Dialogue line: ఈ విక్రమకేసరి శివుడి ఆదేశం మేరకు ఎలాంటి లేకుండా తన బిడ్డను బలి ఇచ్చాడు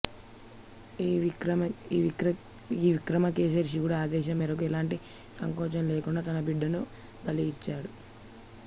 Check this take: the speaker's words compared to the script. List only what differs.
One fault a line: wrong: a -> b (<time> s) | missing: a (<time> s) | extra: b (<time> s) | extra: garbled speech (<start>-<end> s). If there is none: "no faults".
extra: సంకోచం (5.3 s)